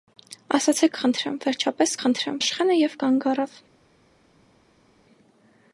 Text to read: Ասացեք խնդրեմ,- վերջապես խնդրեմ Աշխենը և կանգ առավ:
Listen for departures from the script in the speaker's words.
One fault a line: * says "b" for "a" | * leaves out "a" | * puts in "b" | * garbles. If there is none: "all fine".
all fine